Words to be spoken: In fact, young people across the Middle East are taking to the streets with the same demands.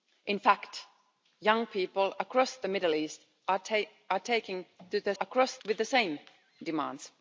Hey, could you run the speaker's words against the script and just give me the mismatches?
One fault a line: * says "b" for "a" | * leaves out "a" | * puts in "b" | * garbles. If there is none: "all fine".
* says "across" for "streets"